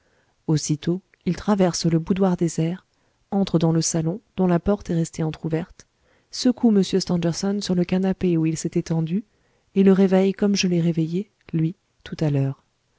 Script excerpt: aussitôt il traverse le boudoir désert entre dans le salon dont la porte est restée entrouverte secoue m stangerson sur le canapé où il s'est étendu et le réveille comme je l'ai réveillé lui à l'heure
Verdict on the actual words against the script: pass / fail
fail